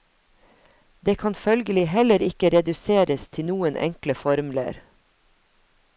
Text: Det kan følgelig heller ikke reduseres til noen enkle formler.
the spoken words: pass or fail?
pass